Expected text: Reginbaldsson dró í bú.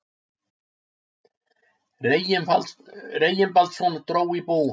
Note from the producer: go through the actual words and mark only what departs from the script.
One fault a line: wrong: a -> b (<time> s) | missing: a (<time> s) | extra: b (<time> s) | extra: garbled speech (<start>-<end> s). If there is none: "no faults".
no faults